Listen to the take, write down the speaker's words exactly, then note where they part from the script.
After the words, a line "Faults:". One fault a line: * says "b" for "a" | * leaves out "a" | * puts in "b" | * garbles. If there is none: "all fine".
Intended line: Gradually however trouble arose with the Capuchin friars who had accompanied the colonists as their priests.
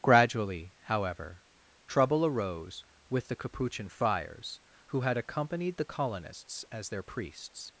Gradually however trouble arose with the Capuchin friars who had accompanied the colonists as their priests.
Faults:
all fine